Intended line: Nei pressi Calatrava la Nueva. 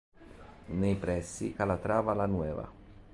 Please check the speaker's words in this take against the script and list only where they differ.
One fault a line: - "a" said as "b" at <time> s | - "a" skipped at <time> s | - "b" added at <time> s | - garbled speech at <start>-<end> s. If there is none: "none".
none